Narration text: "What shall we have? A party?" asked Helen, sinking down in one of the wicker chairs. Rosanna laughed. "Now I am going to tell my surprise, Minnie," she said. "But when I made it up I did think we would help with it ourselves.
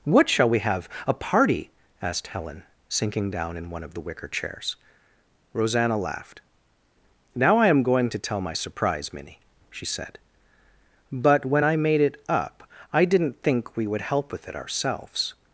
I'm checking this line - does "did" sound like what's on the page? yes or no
no